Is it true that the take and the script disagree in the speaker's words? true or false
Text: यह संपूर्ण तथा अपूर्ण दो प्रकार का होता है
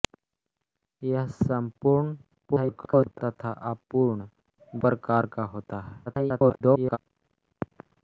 true